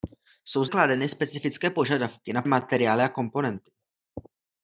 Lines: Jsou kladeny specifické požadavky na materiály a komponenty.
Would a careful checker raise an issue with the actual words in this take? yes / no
no